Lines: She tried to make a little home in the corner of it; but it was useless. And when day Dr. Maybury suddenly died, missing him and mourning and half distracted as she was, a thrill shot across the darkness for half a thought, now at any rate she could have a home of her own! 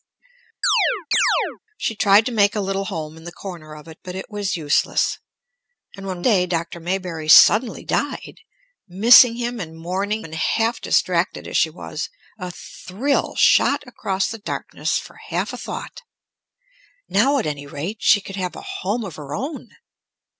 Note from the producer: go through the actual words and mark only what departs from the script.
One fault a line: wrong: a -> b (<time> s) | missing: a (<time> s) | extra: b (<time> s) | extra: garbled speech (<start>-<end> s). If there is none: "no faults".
no faults